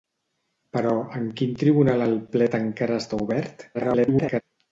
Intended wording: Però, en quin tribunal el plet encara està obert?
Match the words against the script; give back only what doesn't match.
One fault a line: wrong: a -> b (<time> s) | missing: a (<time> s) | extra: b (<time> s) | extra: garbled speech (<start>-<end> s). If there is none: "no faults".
extra: garbled speech (3.7-4.4 s)